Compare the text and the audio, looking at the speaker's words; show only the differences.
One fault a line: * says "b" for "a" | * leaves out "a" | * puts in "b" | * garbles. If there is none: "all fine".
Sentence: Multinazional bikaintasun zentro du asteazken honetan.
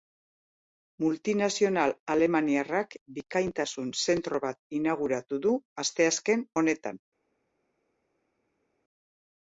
* puts in "alemaniarrak"
* puts in "bat inauguratu"